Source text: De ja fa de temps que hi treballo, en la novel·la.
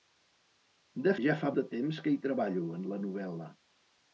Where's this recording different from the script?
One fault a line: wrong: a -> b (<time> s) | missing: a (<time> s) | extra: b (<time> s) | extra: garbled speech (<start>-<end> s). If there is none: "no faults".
no faults